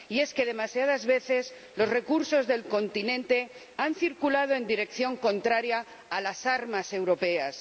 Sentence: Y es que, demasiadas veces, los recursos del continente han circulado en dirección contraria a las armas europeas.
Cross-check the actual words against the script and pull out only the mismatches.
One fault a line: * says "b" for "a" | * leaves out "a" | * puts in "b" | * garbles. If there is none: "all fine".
all fine